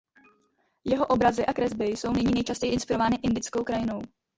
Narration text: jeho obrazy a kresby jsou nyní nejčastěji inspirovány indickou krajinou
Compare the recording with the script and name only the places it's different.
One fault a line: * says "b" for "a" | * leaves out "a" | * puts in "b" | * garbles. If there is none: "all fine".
all fine